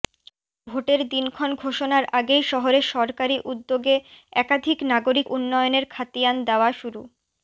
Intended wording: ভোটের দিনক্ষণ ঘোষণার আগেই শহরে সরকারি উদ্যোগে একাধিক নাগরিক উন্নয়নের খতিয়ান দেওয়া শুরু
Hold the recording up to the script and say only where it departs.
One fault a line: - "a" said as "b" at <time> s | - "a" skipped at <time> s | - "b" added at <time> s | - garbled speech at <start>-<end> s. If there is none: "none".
none